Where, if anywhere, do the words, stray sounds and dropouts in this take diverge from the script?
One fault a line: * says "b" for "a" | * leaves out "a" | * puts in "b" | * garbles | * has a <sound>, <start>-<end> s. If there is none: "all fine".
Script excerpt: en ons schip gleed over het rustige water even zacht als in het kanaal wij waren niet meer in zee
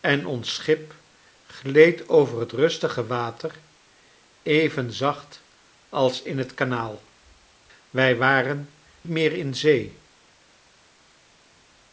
* leaves out "niet"